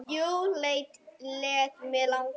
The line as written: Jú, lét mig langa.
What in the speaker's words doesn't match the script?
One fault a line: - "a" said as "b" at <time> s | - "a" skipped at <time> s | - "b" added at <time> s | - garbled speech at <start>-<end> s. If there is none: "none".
none